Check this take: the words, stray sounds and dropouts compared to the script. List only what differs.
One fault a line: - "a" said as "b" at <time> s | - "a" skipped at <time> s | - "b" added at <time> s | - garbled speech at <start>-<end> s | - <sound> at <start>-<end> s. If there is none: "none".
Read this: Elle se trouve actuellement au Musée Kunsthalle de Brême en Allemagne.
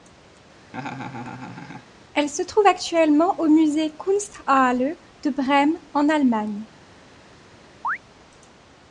- laugh at 0.7-1.9 s
- chirp at 7.8-8.0 s